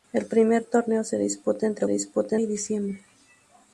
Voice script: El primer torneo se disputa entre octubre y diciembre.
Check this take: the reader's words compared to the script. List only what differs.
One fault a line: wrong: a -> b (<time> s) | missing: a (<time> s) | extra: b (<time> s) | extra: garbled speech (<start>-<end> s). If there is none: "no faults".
wrong: octubre -> disputa (1.9 s)